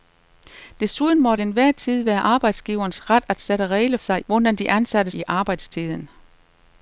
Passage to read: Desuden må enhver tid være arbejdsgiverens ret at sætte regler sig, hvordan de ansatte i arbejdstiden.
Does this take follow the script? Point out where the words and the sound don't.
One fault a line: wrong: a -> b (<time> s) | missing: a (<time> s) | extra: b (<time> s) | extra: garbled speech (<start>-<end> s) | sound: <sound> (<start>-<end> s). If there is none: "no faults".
no faults